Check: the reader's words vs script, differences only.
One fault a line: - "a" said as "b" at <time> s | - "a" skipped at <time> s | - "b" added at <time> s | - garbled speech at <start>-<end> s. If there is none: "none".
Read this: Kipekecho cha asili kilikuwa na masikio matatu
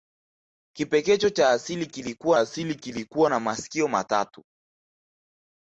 - "asili kilikuwa" added at 2.4 s